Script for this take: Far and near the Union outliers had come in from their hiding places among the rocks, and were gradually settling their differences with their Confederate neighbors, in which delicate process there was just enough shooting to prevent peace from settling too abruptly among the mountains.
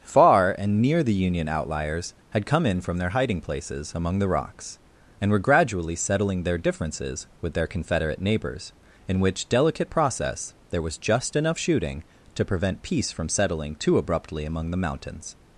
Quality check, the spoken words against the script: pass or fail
pass